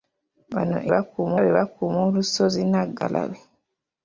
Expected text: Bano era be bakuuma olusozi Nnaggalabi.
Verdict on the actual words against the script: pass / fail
fail